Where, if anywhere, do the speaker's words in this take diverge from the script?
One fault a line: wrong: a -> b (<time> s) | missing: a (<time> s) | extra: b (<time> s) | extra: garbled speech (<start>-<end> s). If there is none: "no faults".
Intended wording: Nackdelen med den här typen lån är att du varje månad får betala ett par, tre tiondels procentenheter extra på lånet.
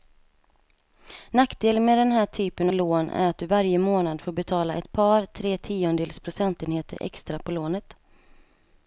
no faults